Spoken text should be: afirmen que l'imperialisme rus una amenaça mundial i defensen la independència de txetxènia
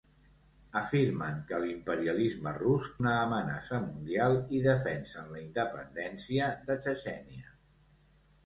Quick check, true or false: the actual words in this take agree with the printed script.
true